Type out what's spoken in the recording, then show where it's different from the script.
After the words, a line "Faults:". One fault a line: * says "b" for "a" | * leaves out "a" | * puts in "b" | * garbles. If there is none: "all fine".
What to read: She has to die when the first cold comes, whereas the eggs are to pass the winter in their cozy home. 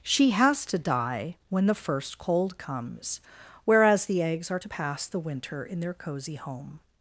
She has to die when the first cold comes, whereas the eggs are to pass the winter in their cozy home.
Faults:
all fine